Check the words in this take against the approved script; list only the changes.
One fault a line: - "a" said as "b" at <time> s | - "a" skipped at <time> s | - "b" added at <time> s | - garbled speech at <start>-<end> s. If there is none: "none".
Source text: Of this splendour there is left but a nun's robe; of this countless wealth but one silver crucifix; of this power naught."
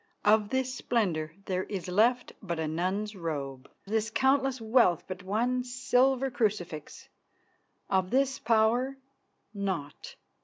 - "of" skipped at 3.7 s